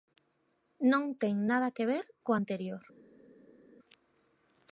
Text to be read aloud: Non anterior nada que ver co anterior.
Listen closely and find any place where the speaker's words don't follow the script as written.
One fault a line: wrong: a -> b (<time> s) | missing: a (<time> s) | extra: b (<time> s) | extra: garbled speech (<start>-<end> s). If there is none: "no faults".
wrong: anterior -> ten (1.2 s)